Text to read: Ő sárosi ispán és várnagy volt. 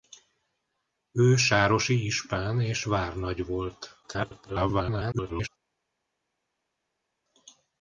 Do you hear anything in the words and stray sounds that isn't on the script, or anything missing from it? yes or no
yes